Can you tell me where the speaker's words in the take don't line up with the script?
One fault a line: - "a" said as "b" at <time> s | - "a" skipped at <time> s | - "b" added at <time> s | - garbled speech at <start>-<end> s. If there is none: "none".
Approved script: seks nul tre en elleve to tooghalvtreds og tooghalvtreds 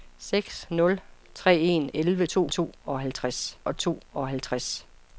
none